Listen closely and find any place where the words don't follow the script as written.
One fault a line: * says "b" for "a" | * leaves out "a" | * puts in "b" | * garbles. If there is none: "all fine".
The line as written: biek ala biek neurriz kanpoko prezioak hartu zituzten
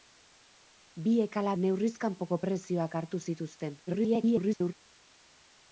* leaves out "biek"
* garbles